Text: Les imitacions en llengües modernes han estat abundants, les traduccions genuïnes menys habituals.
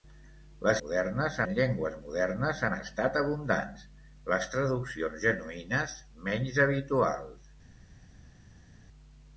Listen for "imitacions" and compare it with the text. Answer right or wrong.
wrong